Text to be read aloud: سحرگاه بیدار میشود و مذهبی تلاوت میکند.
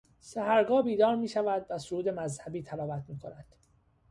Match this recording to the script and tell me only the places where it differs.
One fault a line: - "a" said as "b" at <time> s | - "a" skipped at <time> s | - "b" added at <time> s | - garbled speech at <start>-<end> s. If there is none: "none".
- "سرود" added at 1.8 s